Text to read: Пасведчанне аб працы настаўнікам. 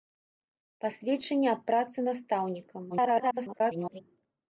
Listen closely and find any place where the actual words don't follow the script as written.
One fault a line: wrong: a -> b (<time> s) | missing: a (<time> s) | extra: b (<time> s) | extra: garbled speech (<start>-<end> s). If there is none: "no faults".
extra: garbled speech (2.9-4.0 s)